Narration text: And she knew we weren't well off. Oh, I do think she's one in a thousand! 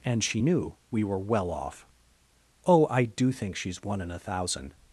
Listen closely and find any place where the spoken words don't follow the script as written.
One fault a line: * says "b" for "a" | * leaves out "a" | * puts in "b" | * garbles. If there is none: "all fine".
* says "were" for "weren't"